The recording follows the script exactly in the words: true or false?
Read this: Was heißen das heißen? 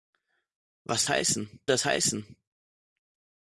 true